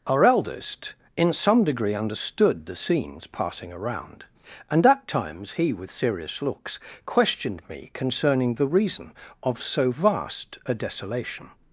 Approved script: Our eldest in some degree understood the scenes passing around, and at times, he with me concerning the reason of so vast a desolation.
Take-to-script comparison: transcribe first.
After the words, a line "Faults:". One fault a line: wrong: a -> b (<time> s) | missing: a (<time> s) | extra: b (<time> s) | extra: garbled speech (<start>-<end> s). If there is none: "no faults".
Our eldest in some degree understood the scenes passing around, and at times, he with serious looks questioned me concerning the reason of so vast a desolation.
Faults:
extra: serious looks questioned (5.9 s)